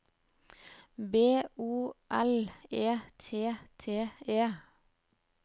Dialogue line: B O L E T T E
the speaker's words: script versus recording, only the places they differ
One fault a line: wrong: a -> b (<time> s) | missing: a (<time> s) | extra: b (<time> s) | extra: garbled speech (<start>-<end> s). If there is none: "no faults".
no faults